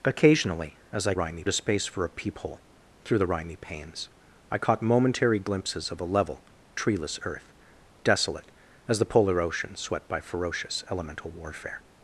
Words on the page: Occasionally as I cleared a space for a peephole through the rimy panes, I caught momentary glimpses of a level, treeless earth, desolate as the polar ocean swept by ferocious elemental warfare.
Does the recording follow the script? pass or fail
fail